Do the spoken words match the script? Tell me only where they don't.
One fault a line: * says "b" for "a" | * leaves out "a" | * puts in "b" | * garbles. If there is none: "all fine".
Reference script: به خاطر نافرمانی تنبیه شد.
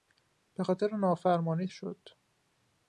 * leaves out "تنبیه"